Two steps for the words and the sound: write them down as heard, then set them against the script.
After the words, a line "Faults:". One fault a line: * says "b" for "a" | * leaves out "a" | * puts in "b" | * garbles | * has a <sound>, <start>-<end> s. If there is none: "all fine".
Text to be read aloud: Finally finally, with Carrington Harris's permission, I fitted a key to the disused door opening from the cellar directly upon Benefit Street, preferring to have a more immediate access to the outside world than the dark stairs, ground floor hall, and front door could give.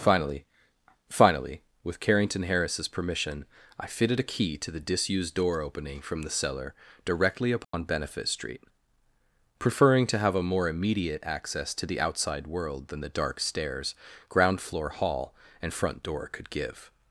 Finally finally, with Carrington Harris's permission, I fitted a key to the disused door opening from the cellar directly upon Benefit Street, preferring to have a more immediate access to the outside world than the dark stairs, ground floor hall, and front door could give.
Faults:
* has a dropout, 7.6-7.7 s